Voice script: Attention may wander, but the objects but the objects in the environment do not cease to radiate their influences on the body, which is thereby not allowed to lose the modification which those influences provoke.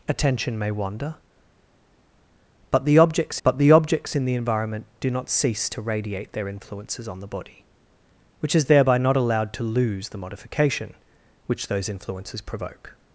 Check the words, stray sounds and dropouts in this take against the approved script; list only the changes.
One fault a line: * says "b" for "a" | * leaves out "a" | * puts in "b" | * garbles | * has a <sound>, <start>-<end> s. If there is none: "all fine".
all fine